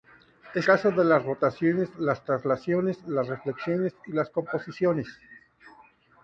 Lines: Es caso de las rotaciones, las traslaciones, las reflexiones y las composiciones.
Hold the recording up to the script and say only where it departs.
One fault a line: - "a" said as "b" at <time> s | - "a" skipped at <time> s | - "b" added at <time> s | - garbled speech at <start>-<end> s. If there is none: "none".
none